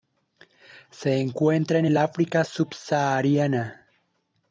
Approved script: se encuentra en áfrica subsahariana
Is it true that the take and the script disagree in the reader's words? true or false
true